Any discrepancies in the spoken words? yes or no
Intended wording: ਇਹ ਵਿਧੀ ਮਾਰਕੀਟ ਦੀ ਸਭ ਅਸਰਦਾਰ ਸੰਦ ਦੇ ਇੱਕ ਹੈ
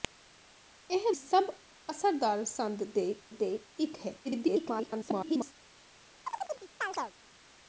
yes